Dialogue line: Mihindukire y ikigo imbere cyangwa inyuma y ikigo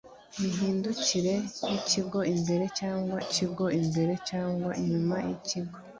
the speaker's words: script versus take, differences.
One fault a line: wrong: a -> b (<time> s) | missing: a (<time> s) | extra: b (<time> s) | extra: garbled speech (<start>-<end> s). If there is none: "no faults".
extra: ikigo imbere cyangwa (3.2 s)